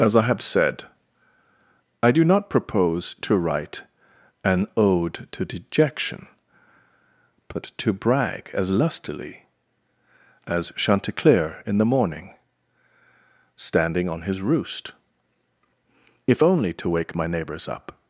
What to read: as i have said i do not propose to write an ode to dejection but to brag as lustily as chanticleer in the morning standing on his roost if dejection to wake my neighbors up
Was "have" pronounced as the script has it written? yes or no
yes